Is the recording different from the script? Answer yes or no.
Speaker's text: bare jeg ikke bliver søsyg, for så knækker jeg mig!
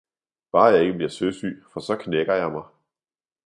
no